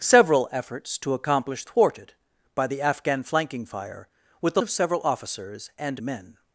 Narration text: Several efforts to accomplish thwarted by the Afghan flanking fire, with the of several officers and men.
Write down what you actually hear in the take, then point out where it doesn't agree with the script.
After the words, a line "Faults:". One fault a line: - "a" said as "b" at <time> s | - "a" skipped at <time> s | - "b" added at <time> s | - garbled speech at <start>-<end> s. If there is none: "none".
Several efforts to accomplish thwarted by the Afghan flanking fire, with the of several officers and men.
Faults:
none